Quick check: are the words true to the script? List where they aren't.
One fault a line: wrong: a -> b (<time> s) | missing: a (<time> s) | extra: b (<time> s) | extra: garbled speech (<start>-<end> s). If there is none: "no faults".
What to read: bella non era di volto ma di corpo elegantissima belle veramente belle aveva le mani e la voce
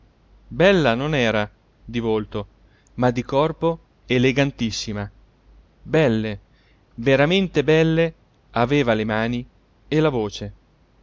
no faults